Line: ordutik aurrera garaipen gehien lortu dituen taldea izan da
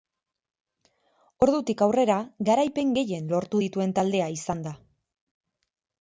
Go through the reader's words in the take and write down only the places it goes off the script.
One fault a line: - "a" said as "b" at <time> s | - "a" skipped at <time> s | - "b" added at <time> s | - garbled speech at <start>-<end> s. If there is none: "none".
none